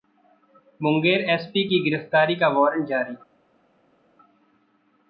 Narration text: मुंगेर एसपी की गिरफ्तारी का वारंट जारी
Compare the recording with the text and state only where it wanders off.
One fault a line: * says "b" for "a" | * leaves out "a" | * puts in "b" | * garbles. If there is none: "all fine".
all fine